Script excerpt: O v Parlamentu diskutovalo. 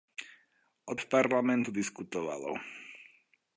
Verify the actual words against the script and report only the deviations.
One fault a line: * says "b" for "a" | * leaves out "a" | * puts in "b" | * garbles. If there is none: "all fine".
all fine